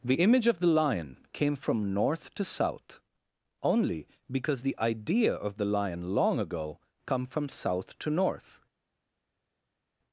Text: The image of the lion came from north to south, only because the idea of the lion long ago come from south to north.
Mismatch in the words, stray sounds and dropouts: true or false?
false